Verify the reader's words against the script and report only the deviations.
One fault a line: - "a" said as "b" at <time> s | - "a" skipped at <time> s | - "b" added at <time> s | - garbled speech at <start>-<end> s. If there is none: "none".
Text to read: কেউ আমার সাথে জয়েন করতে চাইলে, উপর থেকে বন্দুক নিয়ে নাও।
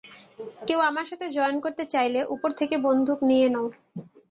none